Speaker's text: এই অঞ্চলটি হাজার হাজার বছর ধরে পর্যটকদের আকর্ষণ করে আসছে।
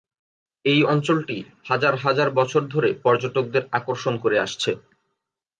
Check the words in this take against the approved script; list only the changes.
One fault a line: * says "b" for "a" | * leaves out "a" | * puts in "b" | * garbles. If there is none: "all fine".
all fine